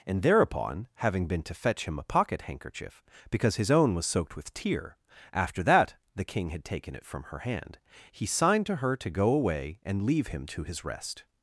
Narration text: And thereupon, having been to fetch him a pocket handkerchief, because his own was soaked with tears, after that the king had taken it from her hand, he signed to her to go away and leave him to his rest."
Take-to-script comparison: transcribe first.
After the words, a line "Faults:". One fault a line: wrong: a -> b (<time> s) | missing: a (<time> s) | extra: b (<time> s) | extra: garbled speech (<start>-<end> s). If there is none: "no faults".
And thereupon, having been to fetch him a pocket handkerchief, because his own was soaked with tear, after that the king had taken it from her hand, he signed to her to go away and leave him to his rest."
Faults:
wrong: tears -> tear (4.5 s)